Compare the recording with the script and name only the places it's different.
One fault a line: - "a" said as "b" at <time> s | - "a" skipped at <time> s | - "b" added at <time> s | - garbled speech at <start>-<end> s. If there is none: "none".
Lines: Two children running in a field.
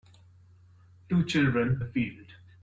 - "running in" skipped at 1.8 s